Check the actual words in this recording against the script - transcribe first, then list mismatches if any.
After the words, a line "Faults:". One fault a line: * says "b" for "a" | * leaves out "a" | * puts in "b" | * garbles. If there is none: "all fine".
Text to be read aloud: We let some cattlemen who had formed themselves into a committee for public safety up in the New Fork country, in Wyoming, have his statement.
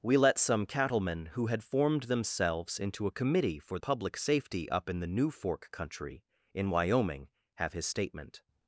We let some cattlemen who had formed themselves into a committee for public safety up in the New Fork country, in Wyoming, have his statement.
Faults:
all fine